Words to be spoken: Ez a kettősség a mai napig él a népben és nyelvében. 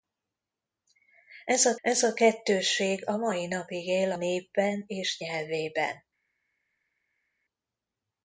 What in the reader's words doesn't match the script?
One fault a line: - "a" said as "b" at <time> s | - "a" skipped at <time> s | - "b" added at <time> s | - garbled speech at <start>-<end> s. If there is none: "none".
- "ez a" added at 1.8 s
- "a" skipped at 4.1 s